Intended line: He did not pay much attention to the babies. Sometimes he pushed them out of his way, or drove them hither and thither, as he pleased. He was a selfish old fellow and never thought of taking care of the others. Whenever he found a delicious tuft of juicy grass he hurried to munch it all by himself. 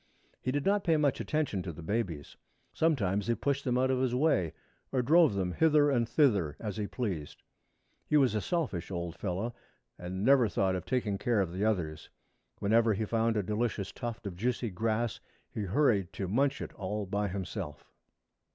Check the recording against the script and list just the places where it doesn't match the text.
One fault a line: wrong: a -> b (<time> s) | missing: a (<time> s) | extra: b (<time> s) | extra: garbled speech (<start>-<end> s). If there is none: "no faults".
no faults